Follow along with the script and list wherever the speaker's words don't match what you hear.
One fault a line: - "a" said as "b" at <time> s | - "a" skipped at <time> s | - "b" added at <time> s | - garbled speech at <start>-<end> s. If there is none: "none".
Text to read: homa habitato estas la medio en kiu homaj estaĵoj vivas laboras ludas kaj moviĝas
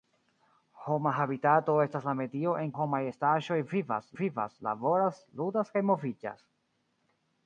- "kiu" skipped at 2.7 s
- "vivas" added at 4.2 s